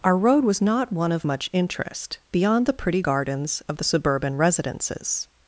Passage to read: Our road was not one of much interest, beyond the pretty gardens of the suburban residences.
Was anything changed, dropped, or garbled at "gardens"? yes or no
no